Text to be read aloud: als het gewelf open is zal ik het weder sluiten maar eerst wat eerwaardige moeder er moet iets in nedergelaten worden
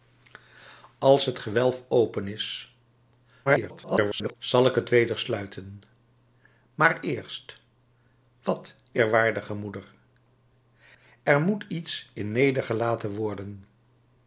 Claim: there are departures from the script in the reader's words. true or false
true